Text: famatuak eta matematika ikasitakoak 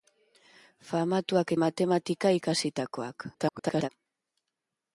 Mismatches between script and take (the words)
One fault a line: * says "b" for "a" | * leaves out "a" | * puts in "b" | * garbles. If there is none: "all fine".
* leaves out "eta"
* garbles